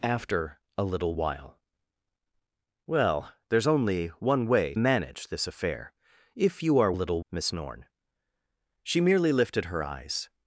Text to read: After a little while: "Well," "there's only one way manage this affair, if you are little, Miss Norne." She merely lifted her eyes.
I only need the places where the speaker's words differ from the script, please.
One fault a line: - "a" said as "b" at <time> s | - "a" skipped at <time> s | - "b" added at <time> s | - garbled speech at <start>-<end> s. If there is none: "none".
none